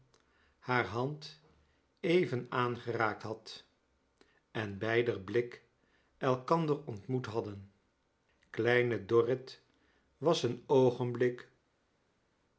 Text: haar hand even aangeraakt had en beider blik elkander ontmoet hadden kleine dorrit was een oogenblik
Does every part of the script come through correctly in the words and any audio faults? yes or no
yes